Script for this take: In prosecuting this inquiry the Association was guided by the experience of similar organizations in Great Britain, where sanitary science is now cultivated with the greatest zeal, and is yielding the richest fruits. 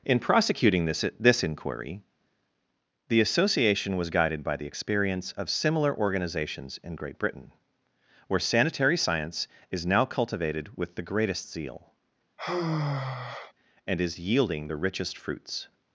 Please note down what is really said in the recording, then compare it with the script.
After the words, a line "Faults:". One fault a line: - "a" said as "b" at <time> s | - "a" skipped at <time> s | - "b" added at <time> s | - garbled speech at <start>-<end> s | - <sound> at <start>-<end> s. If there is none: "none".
In prosecuting this this inquiry the Association was guided by the experience of similar organizations in Great Britain, where sanitary science is now cultivated with the greatest zeal, and is yielding the richest fruits.
Faults:
- "this" added at 1.2 s
- sigh at 12.4-13.5 s